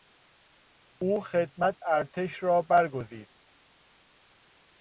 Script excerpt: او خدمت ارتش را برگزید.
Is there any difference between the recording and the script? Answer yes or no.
no